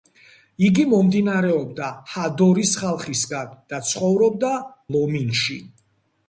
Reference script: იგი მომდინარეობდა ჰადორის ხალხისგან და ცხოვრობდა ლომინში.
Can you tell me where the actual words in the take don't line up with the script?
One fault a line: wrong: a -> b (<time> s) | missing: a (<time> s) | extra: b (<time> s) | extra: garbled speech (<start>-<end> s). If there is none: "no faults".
no faults